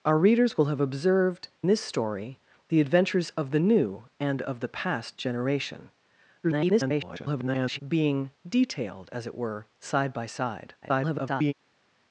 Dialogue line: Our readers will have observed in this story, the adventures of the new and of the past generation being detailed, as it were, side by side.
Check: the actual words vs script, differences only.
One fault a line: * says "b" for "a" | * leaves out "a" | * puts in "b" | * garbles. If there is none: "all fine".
* leaves out "in"
* garbles
* garbles